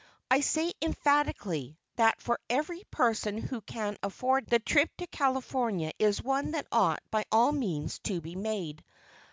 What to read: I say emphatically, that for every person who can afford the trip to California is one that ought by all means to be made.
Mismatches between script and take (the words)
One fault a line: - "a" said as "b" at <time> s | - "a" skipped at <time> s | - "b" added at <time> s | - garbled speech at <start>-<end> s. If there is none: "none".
none